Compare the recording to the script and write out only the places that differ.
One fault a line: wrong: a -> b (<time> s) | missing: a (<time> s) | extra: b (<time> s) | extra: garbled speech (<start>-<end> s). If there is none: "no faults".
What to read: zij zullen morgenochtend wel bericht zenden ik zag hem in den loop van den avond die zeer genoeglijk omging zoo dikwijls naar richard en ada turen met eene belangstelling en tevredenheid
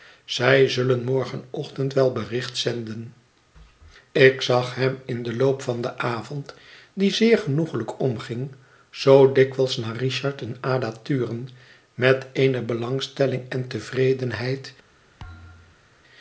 no faults